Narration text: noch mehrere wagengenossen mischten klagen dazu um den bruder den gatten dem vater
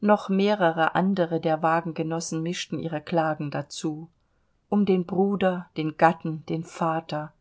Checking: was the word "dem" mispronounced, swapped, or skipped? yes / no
yes